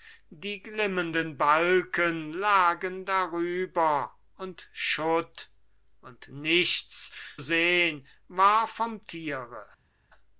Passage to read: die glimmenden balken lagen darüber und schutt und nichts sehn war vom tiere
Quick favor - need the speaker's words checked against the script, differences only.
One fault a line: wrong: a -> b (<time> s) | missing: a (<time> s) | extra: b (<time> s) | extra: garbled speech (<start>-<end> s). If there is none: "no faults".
no faults